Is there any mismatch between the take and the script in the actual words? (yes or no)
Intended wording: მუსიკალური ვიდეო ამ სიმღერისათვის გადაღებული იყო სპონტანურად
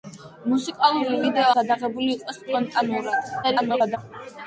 yes